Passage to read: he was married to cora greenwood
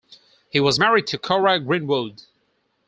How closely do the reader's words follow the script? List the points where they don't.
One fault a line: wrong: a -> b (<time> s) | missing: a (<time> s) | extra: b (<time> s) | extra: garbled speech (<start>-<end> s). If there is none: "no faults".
no faults